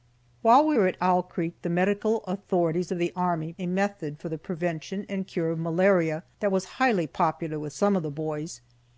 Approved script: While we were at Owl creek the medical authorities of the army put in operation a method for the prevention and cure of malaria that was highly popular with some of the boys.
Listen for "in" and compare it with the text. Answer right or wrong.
wrong